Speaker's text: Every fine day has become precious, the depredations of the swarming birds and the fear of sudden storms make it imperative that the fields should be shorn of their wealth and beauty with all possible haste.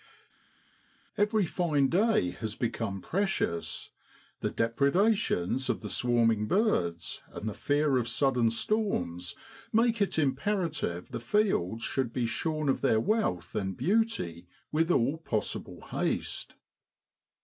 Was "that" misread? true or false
true